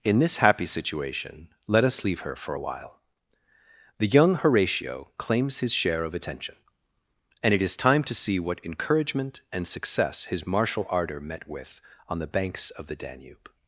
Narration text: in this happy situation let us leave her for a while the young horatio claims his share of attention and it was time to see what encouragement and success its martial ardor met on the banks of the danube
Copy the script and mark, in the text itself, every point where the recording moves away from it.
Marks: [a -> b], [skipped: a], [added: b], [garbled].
in this happy situation let us leave her for a while the young horatio claims his share of attention and it [was -> is] time to see what encouragement and success [its -> his] martial ardor met [added: with] on the banks of the danube